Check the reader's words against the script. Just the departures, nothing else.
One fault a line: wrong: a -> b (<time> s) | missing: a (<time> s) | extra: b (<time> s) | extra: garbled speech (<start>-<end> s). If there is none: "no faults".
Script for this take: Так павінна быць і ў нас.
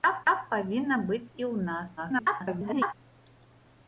extra: так (0.3 s)
extra: garbled speech (2.0-2.9 s)